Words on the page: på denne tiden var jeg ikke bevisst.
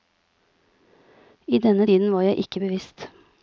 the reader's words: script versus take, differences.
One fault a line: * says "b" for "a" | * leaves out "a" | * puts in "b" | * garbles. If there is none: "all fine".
* says "I" for "på"